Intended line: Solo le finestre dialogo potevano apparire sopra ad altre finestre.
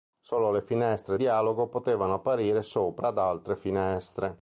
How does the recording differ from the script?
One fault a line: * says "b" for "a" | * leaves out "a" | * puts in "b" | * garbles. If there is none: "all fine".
all fine